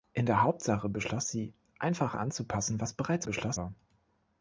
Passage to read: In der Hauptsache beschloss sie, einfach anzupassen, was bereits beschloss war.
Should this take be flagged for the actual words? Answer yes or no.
no